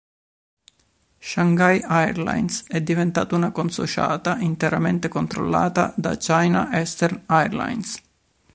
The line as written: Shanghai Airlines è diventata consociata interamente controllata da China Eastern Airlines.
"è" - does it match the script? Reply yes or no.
yes